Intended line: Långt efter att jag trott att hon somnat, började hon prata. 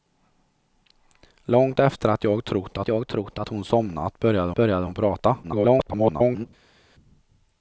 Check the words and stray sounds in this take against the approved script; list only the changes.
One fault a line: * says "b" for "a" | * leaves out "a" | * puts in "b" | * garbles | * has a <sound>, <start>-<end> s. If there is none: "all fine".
* puts in "jag trott att"
* puts in "började"
* garbles